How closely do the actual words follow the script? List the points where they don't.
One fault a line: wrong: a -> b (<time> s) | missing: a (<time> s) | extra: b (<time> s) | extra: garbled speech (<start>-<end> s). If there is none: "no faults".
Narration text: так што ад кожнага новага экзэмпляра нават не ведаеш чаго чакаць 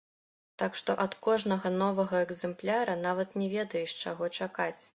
no faults